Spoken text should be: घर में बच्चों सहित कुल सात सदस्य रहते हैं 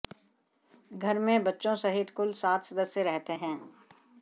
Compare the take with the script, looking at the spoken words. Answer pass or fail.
pass